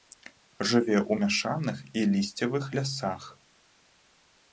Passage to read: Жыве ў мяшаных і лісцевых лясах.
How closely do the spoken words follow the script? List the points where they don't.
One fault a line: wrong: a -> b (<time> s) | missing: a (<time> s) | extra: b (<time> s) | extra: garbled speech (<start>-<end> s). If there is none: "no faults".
no faults